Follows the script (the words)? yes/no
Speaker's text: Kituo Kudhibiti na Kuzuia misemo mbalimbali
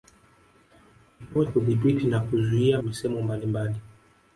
yes